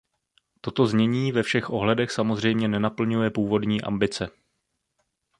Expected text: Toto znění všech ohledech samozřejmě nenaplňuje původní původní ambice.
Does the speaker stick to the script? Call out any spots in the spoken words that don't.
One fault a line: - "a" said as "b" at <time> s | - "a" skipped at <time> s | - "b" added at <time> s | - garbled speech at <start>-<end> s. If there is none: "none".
- "ve" added at 1.3 s
- "původní" skipped at 3.8 s